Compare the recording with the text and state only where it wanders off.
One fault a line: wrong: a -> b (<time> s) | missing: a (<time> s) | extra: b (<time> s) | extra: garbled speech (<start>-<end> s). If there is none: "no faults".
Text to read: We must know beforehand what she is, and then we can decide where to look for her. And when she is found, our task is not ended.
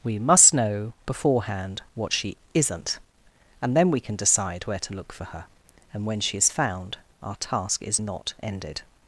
wrong: is -> isn't (2.5 s)